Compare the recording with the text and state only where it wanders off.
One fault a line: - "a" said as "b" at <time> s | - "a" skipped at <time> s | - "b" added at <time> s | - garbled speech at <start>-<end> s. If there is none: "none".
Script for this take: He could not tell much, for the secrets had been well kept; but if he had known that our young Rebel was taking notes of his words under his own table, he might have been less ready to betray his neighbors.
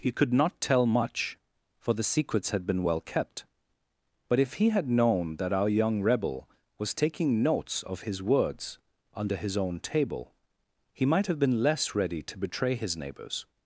none